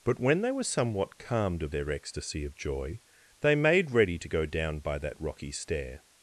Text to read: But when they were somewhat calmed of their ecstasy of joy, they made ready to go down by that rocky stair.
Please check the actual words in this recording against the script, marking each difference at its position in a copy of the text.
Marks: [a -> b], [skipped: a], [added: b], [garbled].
But when they were somewhat calmed of their ecstasy of joy, they made ready to go down by that rocky stair.